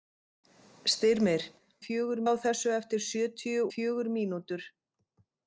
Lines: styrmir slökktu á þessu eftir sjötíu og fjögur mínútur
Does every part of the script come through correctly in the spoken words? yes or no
no